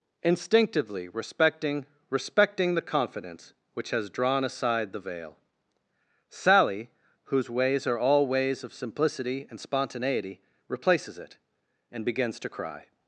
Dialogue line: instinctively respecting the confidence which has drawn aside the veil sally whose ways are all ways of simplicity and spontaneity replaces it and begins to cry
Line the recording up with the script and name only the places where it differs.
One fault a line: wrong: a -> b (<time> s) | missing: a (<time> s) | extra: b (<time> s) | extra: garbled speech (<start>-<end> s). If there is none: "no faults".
extra: respecting (2.1 s)